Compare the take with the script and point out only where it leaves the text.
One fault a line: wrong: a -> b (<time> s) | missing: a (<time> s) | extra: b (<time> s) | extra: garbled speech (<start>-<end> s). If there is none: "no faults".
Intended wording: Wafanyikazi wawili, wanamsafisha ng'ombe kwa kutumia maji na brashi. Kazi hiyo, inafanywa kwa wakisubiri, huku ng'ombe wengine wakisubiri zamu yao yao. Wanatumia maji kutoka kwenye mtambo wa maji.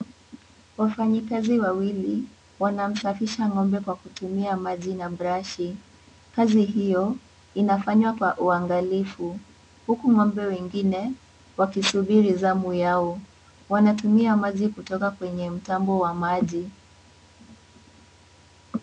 wrong: wakisubiri -> uangalifu (8.4 s)
missing: yao (13.2 s)